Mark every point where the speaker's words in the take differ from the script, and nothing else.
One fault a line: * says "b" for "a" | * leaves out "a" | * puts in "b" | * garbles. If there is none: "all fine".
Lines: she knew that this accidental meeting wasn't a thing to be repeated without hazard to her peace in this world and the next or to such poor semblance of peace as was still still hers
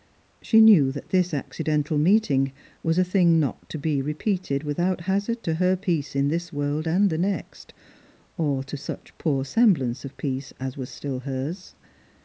* says "was" for "wasn't"
* puts in "not"
* leaves out "still"